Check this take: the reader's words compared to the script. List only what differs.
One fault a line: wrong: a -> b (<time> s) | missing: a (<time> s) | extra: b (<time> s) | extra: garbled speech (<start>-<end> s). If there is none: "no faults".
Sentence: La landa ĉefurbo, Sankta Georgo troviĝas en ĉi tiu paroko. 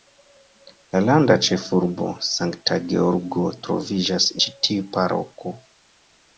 missing: en (4.3 s)